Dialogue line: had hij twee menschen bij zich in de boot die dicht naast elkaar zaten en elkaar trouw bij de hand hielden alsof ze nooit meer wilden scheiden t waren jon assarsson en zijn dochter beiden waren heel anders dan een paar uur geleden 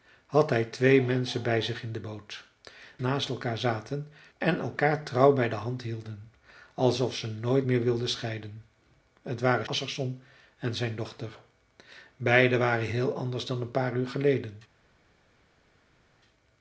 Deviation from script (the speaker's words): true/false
true